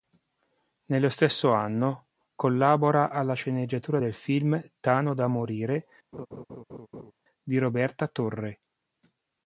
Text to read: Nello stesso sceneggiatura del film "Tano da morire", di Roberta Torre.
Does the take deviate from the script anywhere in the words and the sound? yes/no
yes